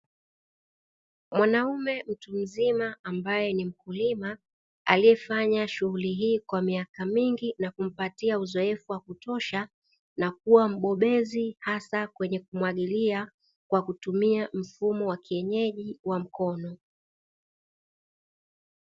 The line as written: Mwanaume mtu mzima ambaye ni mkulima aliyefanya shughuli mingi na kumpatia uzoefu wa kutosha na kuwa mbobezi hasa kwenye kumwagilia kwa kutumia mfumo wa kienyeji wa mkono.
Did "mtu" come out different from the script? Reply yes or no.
no